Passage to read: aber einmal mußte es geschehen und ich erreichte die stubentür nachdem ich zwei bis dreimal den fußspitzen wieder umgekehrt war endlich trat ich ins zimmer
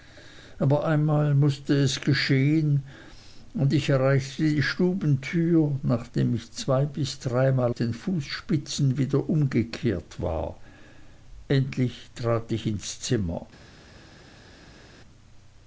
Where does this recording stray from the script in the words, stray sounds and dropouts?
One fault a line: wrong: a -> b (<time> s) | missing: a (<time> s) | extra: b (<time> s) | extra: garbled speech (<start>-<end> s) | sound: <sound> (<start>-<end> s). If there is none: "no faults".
no faults